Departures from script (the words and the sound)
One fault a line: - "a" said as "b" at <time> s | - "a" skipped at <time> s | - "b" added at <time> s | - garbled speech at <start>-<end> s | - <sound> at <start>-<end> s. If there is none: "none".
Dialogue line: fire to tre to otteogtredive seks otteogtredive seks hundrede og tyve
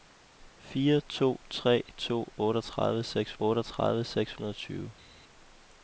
none